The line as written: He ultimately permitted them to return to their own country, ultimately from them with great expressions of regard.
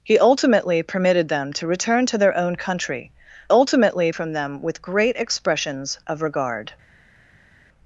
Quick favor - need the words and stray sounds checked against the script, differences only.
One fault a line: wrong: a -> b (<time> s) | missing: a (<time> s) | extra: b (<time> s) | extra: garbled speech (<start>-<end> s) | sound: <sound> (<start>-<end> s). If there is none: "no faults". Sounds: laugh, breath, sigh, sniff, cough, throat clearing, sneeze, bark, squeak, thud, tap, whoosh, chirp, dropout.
no faults